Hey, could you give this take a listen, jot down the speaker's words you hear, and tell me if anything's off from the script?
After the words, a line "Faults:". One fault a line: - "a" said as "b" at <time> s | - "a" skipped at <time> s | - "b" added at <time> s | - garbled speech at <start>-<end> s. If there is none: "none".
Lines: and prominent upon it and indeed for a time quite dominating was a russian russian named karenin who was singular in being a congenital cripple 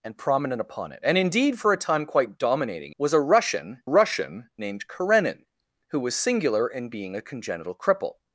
and prominent upon it and indeed for a time quite dominating was a russian russian named karenin who was singular in being a congenital cripple
Faults:
none